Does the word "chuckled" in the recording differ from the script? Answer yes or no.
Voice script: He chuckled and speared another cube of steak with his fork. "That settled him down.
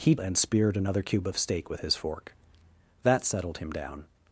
yes